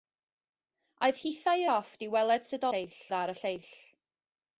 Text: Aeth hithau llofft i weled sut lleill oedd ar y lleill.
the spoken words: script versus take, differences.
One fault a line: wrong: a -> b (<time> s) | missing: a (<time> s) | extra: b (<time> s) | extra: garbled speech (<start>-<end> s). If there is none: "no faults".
no faults